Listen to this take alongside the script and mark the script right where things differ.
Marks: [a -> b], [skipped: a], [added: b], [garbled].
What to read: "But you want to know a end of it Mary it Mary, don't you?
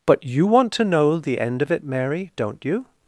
"But you want to know [a -> the] end of it Mary [skipped: it Mary,] don't you?